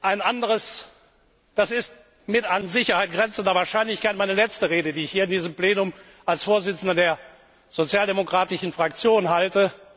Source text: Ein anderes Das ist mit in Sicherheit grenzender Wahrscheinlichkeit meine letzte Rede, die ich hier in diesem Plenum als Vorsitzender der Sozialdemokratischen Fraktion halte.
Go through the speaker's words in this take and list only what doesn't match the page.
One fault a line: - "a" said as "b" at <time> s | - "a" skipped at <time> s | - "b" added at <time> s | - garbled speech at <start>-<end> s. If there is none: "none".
- "in" said as "an" at 2.5 s